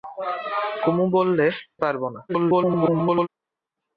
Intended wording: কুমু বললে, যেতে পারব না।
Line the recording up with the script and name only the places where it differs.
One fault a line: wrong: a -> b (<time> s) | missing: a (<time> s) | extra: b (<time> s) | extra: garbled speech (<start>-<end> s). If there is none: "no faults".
missing: যেতে (1.4 s)
extra: garbled speech (2.3-3.3 s)